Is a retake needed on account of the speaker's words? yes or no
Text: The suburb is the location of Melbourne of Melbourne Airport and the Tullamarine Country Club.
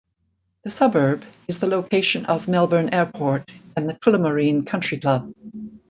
yes